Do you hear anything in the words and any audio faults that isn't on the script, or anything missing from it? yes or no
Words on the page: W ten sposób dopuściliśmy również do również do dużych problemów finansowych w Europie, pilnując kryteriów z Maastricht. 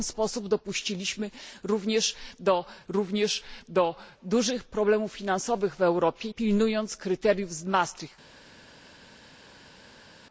no